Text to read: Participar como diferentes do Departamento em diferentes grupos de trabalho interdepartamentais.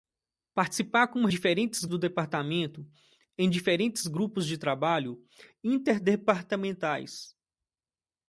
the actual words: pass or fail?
pass